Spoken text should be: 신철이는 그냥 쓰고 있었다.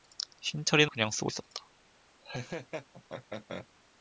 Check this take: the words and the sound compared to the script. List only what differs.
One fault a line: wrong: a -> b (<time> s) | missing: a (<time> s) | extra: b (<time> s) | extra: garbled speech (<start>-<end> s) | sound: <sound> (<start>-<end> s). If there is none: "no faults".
sound: laugh (2.2-3.7 s)